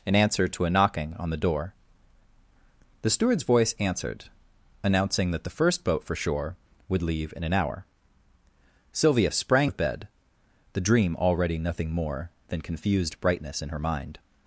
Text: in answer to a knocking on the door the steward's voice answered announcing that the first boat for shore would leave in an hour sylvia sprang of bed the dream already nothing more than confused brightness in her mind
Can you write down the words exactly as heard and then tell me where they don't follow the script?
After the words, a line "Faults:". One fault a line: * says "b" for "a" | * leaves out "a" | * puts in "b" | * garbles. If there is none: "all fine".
in answer to a knocking on the door the steward's voice answered announcing that the first boat for shore would leave in an hour sylvia sprang of bed the dream already nothing more than confused brightness in her mind
Faults:
all fine